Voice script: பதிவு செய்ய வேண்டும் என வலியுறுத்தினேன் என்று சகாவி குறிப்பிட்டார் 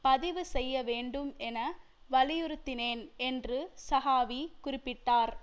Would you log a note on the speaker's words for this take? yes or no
no